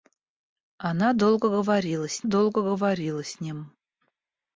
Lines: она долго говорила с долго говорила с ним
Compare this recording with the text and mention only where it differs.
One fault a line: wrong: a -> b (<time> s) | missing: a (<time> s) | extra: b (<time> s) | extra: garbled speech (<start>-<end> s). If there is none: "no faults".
no faults